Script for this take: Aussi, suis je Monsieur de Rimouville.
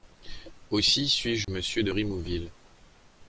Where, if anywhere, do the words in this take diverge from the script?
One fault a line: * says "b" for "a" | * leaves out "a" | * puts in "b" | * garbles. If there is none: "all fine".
all fine